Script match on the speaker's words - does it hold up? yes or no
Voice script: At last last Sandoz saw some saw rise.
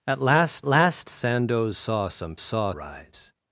yes